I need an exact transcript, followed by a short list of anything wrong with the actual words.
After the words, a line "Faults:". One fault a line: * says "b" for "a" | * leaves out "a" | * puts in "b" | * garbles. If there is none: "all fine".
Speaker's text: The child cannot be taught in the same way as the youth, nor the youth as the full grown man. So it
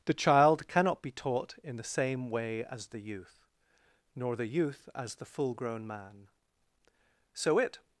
The child cannot be taught in the same way as the youth, nor the youth as the full grown man. So it
Faults:
all fine